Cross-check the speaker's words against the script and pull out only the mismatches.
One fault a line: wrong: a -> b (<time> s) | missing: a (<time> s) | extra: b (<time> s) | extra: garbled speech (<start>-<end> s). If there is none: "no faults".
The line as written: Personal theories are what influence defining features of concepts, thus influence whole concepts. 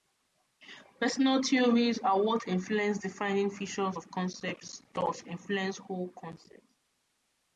no faults